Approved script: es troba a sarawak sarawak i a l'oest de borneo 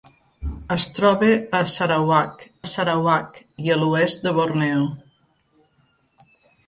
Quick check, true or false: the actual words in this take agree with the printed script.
true